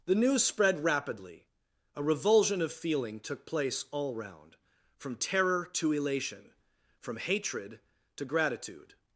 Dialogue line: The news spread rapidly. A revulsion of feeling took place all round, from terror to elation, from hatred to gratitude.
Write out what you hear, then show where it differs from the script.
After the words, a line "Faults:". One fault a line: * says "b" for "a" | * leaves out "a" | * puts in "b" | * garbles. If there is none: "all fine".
The news spread rapidly. A revulsion of feeling took place all round, from terror to elation, from hatred to gratitude.
Faults:
all fine